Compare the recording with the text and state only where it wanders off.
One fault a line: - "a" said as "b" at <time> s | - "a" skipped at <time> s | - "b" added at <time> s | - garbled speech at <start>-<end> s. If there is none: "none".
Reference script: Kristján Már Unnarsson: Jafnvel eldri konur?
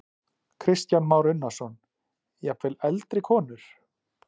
none